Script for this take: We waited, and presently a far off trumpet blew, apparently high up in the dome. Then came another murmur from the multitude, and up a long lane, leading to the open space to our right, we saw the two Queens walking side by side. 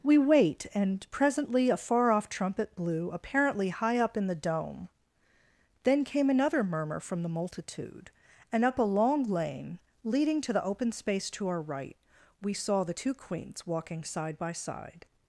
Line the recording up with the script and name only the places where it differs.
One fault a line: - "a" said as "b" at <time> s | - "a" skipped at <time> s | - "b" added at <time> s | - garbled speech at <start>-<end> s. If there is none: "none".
- "waited" said as "wait" at 0.2 s